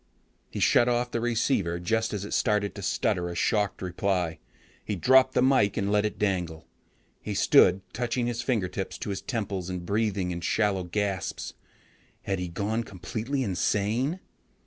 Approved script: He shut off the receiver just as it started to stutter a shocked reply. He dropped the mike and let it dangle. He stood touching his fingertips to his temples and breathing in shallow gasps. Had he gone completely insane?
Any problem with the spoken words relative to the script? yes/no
no